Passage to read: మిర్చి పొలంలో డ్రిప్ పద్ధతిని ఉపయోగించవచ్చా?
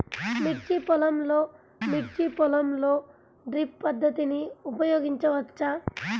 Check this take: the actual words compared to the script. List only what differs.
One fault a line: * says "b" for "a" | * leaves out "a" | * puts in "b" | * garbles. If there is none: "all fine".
* puts in "మిర్చి పొలంలో"